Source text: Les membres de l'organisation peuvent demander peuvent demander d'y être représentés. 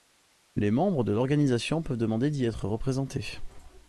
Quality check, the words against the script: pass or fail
fail